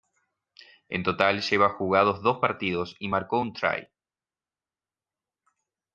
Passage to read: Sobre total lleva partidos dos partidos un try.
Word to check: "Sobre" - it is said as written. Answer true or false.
false